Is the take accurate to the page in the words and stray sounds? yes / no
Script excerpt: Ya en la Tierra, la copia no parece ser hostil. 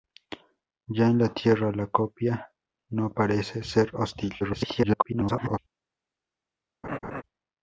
no